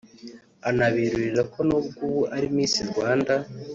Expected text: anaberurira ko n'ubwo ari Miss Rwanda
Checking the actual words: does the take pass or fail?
fail